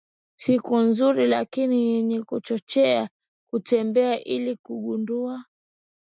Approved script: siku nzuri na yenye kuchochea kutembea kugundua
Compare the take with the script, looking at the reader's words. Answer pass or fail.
fail